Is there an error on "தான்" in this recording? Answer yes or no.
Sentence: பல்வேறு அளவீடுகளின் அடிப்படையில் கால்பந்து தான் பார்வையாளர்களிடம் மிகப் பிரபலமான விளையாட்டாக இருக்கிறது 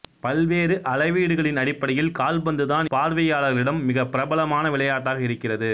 no